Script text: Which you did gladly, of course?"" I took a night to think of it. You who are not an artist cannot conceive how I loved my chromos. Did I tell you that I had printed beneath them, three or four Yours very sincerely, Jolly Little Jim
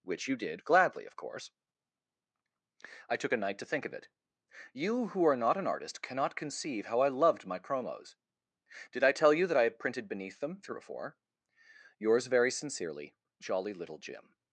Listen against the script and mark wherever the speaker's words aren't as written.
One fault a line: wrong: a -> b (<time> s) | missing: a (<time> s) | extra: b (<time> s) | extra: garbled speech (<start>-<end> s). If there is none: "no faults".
no faults